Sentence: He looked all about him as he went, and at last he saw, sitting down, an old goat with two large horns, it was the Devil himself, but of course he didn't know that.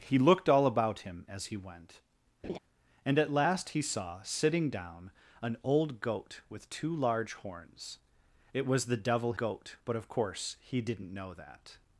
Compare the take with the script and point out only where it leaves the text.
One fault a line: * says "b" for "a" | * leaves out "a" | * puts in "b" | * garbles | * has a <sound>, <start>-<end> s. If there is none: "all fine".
* has a laugh, 2.4-2.6 s
* says "goat" for "himself"